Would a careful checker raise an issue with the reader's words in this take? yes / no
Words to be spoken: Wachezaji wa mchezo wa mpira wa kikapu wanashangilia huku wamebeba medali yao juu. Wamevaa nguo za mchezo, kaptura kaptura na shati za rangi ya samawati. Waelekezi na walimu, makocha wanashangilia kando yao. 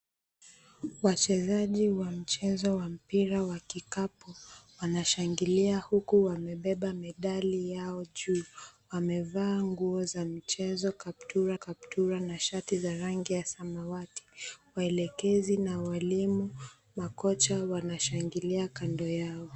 no